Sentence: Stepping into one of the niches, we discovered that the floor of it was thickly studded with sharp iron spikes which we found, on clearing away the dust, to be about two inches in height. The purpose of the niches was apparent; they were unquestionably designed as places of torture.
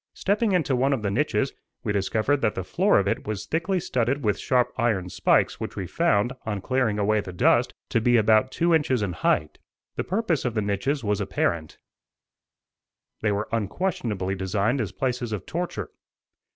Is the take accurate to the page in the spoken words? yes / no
yes